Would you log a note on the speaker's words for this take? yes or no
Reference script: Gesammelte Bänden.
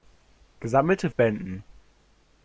no